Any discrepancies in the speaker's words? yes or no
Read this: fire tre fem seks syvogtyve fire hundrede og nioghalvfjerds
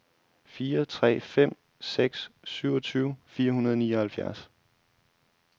no